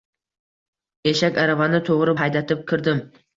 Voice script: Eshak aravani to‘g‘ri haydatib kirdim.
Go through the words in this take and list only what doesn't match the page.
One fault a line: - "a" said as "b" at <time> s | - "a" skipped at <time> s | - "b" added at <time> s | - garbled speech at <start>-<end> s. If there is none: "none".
none